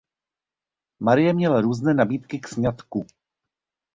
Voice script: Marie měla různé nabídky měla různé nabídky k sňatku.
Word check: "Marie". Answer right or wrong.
right